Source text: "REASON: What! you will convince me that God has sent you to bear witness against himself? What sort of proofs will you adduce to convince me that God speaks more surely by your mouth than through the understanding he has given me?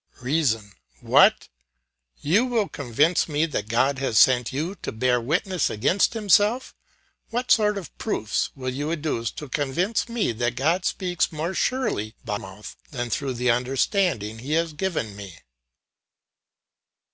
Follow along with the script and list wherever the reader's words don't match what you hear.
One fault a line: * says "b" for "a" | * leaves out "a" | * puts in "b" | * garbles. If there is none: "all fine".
* leaves out "your"